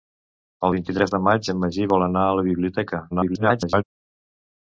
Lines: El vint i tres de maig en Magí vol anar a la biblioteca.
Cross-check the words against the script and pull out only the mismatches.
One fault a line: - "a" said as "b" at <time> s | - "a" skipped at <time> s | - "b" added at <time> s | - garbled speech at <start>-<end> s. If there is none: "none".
- garbled speech at 3.1-3.8 s